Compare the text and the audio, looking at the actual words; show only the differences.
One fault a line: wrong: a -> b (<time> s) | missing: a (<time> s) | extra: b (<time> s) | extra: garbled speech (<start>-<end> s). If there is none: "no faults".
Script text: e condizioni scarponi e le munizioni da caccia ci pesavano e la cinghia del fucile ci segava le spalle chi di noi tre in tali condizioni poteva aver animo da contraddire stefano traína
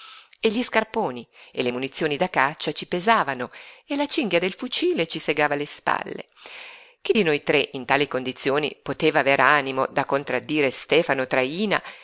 wrong: condizioni -> gli (0.5 s)